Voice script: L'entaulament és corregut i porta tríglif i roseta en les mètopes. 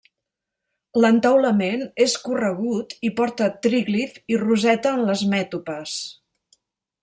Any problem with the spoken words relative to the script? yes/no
no